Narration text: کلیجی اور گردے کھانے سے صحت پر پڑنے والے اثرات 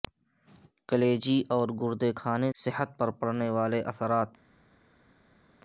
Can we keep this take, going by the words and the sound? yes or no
no